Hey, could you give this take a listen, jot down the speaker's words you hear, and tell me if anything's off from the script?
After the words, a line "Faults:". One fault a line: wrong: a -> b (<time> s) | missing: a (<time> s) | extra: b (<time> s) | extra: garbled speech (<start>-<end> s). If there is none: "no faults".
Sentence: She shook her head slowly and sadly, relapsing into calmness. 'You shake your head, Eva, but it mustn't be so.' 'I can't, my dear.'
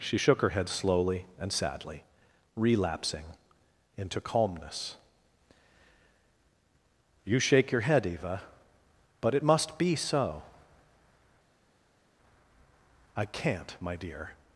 She shook her head slowly and sadly, relapsing into calmness. 'You shake your head, Eva, but it must be so.' 'I can't, my dear.'
Faults:
wrong: mustn't -> must (9.4 s)